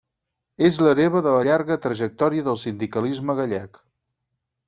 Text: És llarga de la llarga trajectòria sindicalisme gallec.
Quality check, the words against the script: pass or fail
fail